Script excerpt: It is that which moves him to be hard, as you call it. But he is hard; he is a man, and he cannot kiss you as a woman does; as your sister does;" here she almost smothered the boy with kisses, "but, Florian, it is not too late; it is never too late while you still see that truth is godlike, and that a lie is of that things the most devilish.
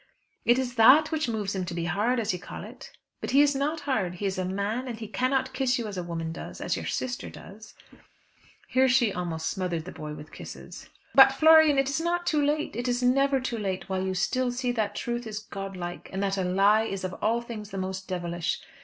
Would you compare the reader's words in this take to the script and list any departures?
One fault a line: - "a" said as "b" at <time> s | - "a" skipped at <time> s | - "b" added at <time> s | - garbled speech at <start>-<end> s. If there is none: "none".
- "not" added at 3.5 s
- "that" said as "all" at 17.2 s